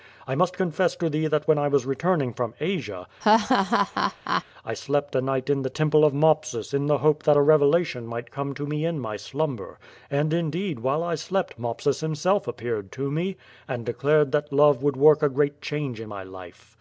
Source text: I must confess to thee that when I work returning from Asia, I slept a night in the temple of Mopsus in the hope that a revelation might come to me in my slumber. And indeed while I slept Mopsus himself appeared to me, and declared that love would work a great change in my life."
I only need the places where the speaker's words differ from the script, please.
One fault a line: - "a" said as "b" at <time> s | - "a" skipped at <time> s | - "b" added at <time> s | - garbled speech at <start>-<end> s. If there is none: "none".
- "work" said as "was" at 1.7 s